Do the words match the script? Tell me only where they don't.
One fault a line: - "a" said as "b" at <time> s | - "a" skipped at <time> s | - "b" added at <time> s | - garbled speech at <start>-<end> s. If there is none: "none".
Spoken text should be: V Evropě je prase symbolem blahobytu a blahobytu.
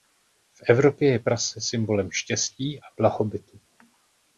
- "blahobytu" said as "štěstí" at 2.1 s